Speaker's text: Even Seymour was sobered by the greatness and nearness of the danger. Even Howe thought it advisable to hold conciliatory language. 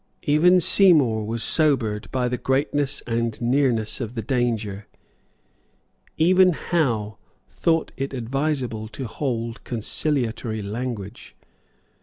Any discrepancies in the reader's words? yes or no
no